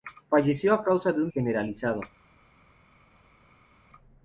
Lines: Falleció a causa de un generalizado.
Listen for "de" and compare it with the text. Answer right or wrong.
right